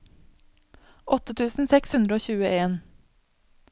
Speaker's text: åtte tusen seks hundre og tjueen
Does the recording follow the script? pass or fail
pass